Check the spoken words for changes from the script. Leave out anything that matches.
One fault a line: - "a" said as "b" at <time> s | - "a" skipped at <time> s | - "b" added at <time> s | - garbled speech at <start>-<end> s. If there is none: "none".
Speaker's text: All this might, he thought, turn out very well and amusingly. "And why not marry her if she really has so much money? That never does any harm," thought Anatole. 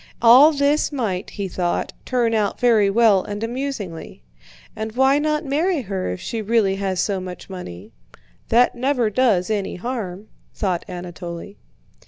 none